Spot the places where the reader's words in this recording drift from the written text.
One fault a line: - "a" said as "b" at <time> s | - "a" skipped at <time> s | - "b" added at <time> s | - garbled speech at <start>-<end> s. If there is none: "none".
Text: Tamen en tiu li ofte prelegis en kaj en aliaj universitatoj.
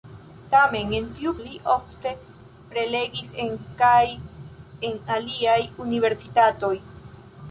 none